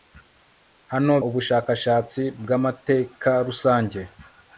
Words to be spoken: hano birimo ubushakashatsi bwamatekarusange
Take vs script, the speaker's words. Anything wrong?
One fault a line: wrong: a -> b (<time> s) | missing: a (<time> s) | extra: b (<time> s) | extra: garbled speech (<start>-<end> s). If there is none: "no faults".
missing: birimo (1.1 s)